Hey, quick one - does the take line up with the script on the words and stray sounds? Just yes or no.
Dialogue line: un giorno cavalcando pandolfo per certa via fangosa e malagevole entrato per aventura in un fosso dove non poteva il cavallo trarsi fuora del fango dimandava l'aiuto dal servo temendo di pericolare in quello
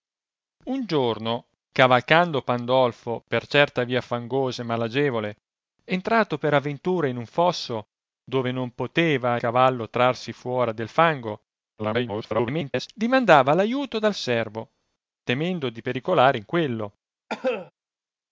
no